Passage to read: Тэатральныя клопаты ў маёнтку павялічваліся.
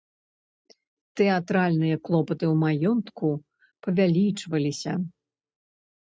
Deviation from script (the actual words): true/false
false